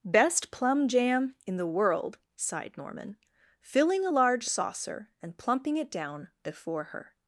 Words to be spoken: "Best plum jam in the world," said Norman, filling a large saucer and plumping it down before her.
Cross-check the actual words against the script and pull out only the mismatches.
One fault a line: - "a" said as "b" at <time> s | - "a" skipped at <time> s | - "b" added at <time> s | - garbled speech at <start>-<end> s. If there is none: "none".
- "said" said as "sighed" at 2.4 s